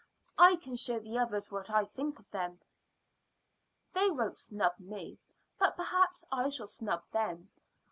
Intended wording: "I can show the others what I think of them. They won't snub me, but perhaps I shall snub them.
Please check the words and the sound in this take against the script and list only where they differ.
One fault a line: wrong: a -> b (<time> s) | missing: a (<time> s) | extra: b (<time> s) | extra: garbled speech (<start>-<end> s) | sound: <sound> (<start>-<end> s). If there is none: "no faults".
no faults